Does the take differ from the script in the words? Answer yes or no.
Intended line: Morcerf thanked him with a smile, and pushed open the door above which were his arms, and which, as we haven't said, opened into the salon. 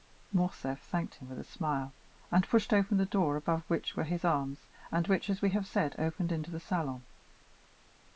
yes